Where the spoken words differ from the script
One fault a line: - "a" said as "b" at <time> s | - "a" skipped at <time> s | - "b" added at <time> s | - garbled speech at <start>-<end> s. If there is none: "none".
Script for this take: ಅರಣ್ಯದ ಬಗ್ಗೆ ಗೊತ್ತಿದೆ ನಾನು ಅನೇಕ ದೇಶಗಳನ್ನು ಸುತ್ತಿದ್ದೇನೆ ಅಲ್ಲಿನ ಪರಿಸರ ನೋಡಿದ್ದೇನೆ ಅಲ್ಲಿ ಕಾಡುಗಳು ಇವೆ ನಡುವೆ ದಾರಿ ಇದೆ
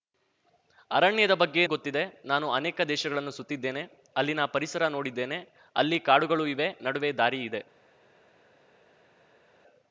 none